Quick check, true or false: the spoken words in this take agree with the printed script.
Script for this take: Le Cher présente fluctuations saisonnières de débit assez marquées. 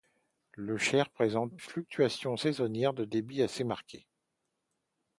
true